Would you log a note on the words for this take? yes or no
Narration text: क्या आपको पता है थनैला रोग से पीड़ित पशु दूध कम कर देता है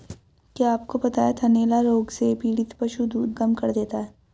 no